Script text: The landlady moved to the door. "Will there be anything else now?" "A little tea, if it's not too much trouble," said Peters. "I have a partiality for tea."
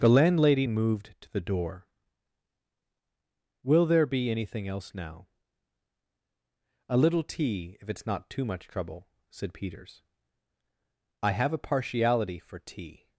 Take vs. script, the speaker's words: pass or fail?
pass